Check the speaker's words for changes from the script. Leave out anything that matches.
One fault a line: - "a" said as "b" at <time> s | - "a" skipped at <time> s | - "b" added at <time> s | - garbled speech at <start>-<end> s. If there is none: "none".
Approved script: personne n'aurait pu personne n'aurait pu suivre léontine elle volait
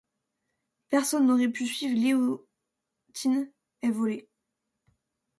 - "personne n'aurait pu" skipped at 1.7 s